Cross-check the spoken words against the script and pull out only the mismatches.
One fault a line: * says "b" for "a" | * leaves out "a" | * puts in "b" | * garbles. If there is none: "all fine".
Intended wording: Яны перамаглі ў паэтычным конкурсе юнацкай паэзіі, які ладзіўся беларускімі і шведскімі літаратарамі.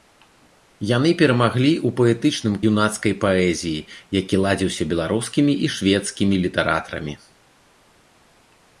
* leaves out "конкурсе"